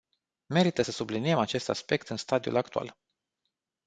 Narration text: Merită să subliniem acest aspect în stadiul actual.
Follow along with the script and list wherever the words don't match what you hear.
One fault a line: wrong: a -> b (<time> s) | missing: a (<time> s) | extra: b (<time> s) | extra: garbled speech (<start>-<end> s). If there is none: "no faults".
no faults